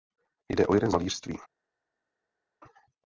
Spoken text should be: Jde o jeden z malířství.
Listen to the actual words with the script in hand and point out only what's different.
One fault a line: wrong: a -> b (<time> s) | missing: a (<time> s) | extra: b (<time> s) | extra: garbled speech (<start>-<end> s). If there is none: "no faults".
no faults